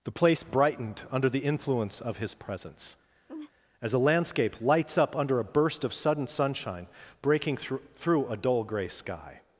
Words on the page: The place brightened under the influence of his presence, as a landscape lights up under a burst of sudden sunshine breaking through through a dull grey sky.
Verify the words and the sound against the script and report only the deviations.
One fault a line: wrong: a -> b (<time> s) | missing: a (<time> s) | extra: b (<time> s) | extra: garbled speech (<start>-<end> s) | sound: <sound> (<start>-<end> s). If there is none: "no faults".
sound: laugh (3.3-3.5 s)